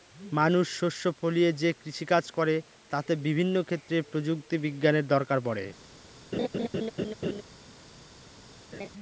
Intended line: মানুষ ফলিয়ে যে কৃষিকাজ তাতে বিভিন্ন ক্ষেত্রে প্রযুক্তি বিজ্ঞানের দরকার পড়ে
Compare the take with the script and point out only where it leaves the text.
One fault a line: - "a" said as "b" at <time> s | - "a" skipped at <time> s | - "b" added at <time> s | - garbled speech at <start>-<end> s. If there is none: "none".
- "শস্য" added at 0.8 s
- "করে" added at 2.4 s